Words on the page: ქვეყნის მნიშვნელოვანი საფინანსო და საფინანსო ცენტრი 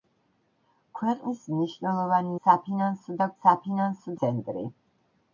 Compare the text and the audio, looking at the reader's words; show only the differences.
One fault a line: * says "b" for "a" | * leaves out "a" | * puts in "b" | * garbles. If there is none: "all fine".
all fine